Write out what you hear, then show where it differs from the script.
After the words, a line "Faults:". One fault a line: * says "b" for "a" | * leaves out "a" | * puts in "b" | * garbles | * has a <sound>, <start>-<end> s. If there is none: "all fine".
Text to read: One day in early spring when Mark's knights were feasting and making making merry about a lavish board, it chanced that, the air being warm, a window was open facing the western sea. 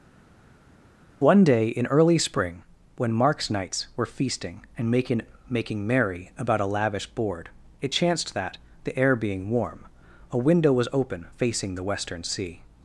One day in early spring when Mark's knights were feasting and making making merry about a lavish board, it chanced that, the air being warm, a window was open facing the western sea.
Faults:
all fine